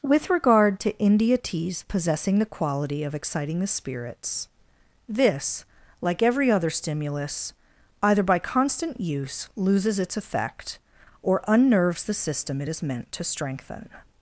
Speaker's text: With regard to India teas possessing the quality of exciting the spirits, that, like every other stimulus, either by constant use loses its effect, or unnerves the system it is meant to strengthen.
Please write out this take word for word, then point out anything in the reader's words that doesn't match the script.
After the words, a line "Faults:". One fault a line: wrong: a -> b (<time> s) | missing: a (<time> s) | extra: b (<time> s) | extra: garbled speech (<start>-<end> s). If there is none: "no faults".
With regard to India teas possessing the quality of exciting the spirits, this, like every other stimulus, either by constant use loses its effect, or unnerves the system it is meant to strengthen.
Faults:
wrong: that -> this (5.1 s)